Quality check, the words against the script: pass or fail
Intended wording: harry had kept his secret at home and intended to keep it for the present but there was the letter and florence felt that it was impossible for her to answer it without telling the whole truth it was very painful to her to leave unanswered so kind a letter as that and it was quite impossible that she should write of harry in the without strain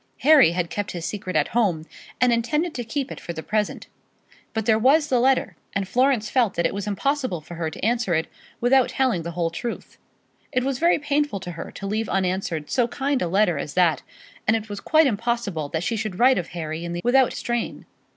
pass